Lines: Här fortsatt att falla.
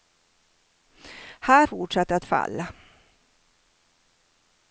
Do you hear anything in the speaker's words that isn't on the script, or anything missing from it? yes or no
no